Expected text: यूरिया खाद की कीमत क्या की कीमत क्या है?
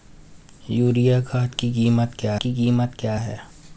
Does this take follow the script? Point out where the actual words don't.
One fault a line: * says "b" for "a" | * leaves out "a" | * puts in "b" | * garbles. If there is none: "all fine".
all fine